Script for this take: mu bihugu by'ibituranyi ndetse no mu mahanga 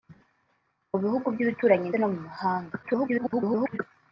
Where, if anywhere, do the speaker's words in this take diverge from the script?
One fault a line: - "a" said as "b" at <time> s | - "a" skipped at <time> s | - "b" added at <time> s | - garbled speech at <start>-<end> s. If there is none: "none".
- "ndetse" skipped at 1.9 s
- garbled speech at 2.8-3.8 s